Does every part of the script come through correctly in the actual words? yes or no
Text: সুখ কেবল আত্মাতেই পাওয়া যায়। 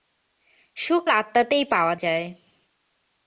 no